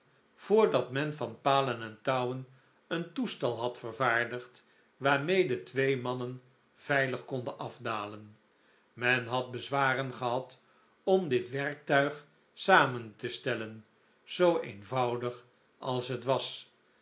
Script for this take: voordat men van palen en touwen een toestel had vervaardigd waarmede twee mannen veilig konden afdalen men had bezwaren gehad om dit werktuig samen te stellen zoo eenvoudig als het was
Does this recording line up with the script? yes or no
yes